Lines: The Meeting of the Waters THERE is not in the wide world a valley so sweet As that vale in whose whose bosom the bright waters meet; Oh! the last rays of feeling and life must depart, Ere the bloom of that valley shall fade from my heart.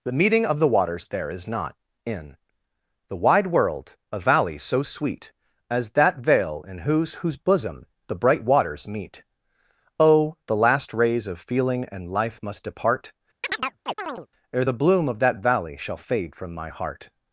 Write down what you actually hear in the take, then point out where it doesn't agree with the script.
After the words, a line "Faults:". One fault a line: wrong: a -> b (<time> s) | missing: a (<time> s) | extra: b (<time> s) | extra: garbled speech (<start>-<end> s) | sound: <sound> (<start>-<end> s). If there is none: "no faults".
The Meeting of the Waters THERE is not in the wide world a valley so sweet As that vale in whose whose bosom the bright waters meet; Oh! the last rays of feeling and life must depart, Ere the bloom of that valley shall fade from my heart.
Faults:
sound: chirp (13.4-14.3 s)